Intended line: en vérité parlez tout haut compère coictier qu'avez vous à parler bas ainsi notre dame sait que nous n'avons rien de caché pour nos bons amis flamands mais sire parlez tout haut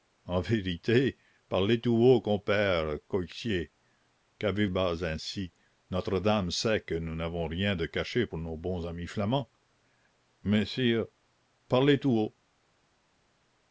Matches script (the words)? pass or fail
fail